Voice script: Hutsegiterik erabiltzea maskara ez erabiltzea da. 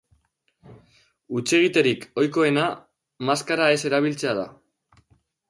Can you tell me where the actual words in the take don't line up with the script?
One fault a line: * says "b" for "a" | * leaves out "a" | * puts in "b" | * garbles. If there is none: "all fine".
* says "ohikoena" for "erabiltzea"